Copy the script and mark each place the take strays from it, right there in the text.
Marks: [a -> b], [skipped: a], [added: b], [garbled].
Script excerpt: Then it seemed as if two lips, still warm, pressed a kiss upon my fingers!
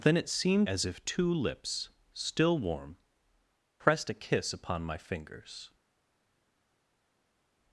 Then it seemed as if two lips, still warm, pressed a kiss upon my fingers!